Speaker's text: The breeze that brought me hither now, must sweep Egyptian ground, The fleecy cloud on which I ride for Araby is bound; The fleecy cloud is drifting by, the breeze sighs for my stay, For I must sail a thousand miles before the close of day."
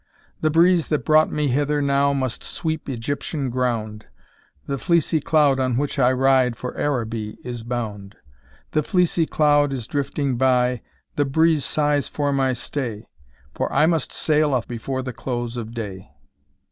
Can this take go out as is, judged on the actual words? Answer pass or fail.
fail